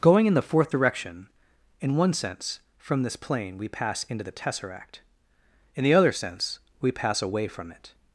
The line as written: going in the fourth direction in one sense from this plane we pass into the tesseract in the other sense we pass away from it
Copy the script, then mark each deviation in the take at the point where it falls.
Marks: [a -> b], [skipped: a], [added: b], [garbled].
going in the fourth direction in one sense from this plane we pass into the tesseract in the other sense we pass away from it